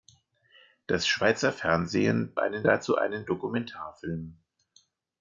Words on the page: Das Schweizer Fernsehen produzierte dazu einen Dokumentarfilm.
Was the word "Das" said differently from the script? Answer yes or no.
no